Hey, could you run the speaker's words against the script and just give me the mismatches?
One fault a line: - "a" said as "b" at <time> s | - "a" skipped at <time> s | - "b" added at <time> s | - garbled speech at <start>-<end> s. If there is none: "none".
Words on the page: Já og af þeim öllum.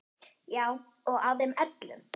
none